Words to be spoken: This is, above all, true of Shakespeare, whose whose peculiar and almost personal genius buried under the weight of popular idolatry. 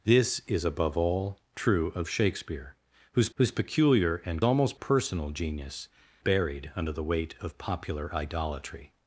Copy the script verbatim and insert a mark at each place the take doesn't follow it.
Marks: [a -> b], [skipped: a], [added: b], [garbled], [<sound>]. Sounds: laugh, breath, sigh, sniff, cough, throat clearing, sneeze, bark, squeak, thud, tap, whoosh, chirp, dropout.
This is, above all, true of Shakespeare, whose whose peculiar and almost personal genius buried under the weight of popular idolatry.